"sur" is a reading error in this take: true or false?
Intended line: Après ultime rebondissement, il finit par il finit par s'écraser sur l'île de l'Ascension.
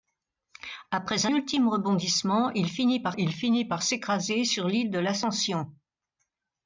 false